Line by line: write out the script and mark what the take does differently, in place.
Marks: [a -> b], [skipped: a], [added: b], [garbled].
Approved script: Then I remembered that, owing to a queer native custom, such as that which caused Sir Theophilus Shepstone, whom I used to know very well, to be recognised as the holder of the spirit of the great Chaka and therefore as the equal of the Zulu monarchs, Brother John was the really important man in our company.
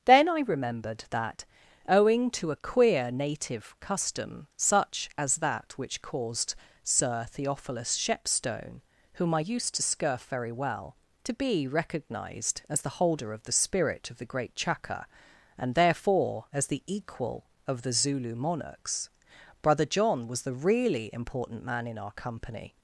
Then I remembered that, owing to a queer native custom, such as that which caused Sir Theophilus Shepstone, whom I used to [know -> scurf] very well, to be recognised as the holder of the spirit of the great Chaka and therefore as the equal of the Zulu monarchs, Brother John was the really important man in our company.